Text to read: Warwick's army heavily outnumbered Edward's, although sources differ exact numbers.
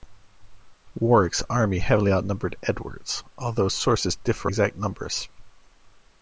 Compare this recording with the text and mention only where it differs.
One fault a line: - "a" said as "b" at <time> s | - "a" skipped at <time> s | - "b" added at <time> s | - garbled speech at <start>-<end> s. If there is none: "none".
none